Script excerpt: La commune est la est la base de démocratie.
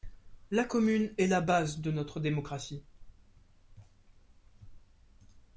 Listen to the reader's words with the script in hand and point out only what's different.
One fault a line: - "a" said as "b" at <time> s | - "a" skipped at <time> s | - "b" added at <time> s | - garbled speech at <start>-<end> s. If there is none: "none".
- "est la" skipped at 1.4 s
- "notre" added at 1.9 s